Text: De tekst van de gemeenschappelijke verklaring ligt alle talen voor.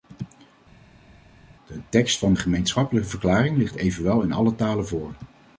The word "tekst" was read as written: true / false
true